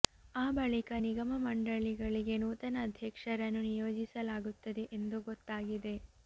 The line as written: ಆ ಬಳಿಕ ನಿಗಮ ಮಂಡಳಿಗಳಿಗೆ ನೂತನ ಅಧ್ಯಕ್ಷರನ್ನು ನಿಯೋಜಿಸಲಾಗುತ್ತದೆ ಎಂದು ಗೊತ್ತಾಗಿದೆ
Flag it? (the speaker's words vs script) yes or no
no